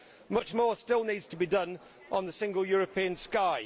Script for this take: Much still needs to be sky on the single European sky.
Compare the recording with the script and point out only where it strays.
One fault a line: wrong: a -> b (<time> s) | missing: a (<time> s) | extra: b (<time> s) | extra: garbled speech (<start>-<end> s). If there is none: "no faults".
extra: more (0.5 s)
wrong: sky -> done (1.5 s)